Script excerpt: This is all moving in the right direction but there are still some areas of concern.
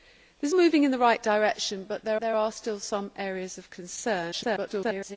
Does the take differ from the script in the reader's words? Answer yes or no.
yes